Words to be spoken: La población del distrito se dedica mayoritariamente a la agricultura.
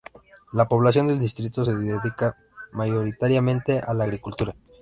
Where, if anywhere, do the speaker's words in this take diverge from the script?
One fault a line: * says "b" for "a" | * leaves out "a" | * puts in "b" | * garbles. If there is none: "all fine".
all fine